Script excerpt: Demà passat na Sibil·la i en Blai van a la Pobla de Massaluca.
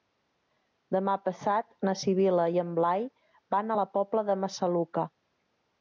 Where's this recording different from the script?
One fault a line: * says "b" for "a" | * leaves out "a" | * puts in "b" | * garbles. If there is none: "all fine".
all fine